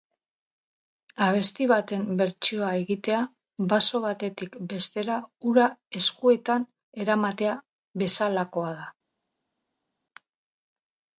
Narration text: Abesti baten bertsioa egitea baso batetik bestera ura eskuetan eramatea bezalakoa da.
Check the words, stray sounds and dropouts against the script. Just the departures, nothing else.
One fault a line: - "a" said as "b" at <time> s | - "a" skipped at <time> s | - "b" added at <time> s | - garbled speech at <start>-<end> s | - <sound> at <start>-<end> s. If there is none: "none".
none